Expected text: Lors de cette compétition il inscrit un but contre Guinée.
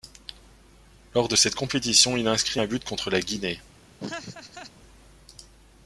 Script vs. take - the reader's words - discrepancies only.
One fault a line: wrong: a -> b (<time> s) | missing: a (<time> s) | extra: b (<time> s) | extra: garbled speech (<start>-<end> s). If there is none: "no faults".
extra: la (3.1 s)